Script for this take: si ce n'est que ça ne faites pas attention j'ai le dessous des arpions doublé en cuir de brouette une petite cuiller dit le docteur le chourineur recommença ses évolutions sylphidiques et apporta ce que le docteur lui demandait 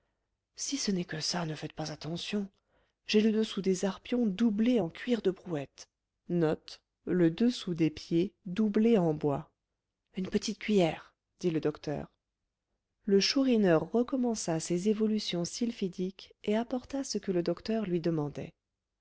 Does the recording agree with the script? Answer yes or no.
yes